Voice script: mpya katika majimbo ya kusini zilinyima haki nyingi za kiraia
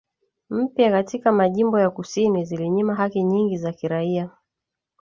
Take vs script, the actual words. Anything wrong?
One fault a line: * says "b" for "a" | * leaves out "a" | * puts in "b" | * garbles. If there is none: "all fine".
all fine